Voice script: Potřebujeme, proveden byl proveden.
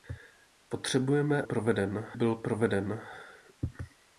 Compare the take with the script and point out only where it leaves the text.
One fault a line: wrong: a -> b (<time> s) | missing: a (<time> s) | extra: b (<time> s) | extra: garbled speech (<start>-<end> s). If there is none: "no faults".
no faults